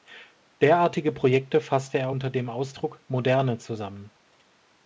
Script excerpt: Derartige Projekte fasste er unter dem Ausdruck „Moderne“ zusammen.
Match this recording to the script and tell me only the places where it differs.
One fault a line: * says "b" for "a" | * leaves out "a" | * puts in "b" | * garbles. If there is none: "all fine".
all fine